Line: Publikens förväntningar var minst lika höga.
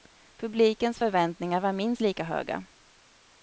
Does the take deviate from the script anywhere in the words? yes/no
no